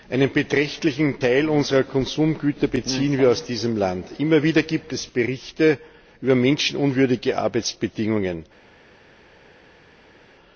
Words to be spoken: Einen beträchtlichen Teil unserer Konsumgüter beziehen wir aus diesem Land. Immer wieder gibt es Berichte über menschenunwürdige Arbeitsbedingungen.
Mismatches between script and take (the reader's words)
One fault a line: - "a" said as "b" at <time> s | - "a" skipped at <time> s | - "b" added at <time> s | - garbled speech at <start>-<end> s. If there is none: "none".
none